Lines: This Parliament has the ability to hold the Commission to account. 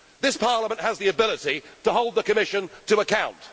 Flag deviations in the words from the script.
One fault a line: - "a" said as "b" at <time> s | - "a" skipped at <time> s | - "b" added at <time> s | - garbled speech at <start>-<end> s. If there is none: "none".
none